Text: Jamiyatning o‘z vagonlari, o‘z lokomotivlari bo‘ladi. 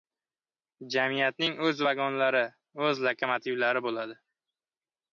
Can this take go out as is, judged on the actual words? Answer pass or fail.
pass